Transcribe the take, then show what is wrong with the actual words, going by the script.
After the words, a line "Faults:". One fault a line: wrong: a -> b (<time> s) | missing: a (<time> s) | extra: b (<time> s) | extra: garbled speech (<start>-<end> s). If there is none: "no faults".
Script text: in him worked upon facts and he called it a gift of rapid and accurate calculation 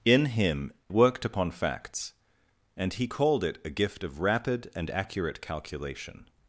in him worked upon facts and he called it a gift of rapid and accurate calculation
Faults:
no faults